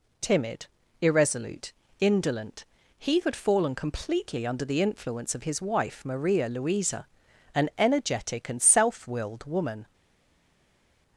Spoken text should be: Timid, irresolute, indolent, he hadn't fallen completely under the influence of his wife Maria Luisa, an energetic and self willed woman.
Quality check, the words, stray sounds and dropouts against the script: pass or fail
fail